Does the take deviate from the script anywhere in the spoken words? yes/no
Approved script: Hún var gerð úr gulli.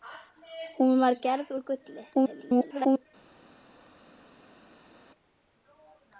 yes